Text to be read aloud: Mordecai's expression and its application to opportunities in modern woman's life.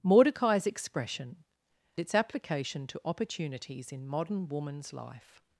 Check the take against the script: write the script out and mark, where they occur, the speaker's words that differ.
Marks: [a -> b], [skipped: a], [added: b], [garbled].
Mordecai's expression [skipped: and] its application to opportunities in modern woman's life.